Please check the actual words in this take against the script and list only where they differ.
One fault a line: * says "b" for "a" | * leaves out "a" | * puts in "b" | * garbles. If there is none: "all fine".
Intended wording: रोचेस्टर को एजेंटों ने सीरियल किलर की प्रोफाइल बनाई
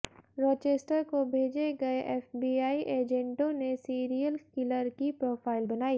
* puts in "भेजे गए एफबीआई"